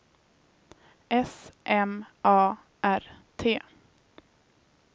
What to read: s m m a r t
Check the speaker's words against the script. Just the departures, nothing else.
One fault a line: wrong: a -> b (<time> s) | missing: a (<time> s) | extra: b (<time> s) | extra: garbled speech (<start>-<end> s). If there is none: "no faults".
missing: m (2.1 s)